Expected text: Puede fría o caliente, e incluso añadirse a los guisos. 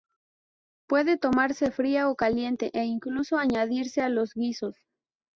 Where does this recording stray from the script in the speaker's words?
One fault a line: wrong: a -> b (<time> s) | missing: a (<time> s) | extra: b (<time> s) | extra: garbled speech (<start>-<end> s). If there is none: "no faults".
extra: tomarse (1.2 s)